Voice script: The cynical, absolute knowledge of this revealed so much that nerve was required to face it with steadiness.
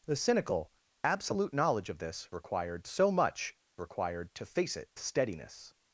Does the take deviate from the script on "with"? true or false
true